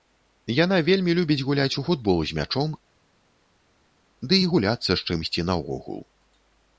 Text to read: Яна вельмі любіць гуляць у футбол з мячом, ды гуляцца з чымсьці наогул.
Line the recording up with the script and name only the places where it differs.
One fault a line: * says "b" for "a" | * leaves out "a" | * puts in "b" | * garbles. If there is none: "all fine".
* puts in "і"